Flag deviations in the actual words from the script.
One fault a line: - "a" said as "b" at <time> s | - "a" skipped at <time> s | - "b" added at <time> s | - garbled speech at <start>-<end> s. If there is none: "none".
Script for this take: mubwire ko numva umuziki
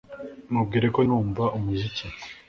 none